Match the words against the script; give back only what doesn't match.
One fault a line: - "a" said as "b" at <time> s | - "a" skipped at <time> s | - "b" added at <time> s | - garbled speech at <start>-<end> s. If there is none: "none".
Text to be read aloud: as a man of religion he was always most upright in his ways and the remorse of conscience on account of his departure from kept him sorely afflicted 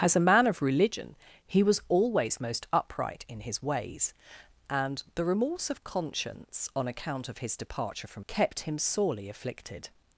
none